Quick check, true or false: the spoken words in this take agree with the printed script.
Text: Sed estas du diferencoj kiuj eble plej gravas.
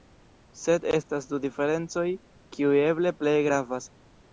true